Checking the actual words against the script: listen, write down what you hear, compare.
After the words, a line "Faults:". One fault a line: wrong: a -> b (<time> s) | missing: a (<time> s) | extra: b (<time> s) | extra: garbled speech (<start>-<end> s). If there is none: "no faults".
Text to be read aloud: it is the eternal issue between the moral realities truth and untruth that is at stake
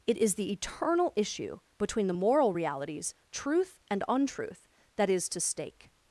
it is the eternal issue between the moral realities truth and untruth that is to stake
Faults:
wrong: at -> to (5.3 s)